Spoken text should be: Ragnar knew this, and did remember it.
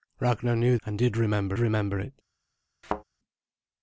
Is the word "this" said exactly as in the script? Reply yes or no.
no